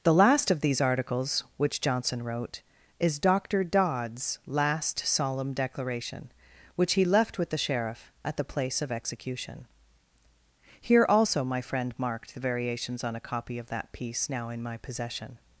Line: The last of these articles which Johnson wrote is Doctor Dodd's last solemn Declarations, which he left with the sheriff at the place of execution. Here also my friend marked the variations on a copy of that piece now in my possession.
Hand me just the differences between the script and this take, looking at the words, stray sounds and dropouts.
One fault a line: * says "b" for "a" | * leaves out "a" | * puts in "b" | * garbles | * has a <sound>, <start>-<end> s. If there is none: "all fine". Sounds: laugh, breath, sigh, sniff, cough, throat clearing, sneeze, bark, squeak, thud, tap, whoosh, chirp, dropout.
* says "Declaration" for "Declarations"